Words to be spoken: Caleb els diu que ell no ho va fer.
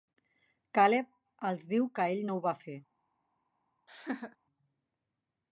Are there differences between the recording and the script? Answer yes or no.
no